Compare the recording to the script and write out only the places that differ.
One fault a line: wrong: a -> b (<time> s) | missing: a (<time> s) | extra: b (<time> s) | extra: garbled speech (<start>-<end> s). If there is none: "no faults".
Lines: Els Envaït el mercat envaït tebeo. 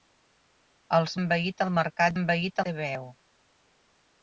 no faults